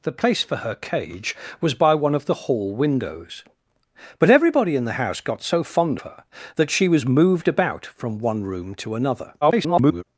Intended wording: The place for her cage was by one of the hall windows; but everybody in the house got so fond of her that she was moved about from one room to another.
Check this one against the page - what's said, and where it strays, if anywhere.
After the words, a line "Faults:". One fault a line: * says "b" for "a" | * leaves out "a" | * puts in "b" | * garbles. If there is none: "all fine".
The place for her cage was by one of the hall windows; but everybody in the house got so fond her that she was moved about from one room to another. [garbled]
Faults:
* leaves out "of"
* garbles